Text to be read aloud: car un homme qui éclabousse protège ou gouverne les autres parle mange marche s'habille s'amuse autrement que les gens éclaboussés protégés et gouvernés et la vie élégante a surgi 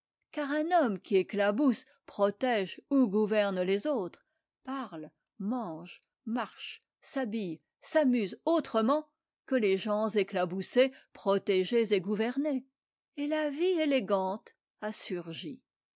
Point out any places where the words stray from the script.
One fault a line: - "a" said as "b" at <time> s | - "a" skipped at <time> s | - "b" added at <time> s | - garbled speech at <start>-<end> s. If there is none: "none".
none